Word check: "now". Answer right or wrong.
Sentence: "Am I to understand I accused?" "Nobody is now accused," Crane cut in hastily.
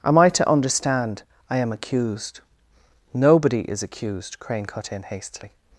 wrong